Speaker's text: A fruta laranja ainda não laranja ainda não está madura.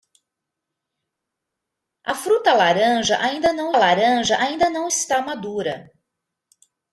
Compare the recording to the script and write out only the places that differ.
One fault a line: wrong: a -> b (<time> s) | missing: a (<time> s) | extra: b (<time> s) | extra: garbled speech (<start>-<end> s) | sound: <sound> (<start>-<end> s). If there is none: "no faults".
no faults